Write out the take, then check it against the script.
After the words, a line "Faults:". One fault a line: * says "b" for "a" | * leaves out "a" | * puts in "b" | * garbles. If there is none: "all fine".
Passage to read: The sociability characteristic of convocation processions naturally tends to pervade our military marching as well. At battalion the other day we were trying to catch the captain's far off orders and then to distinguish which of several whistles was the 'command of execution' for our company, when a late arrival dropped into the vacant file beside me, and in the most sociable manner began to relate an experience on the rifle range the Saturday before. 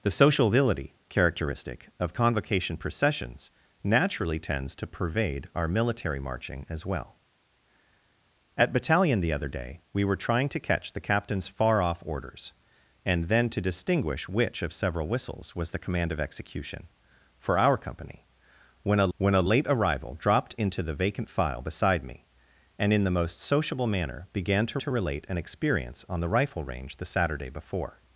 The sociability characteristic of convocation processions naturally tends to pervade our military marching as well. At battalion the other day we were trying to catch the captain's far off orders and then to distinguish which of several whistles was the 'command of execution' for our company, when a when a late arrival dropped into the vacant file beside me, and in the most sociable manner began to to relate an experience on the rifle range the Saturday before.
Faults:
* puts in "when a"
* puts in "to"